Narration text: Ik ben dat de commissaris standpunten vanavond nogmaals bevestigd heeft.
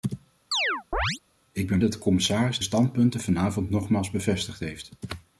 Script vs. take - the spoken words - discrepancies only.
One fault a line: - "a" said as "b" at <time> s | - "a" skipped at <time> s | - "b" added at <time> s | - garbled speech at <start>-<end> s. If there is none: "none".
none